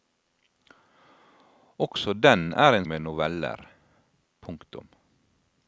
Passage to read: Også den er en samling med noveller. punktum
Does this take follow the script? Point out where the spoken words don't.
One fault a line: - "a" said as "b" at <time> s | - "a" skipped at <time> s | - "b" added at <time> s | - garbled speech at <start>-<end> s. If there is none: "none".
- "samling" skipped at 2.9 s